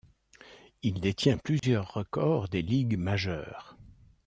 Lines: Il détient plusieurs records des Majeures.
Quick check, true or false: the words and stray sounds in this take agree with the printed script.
false